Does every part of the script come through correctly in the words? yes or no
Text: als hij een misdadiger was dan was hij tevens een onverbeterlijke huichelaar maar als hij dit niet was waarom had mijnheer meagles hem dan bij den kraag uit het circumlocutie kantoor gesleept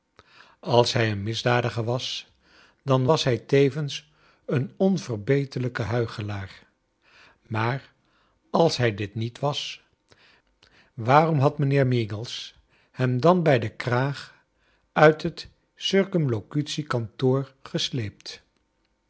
yes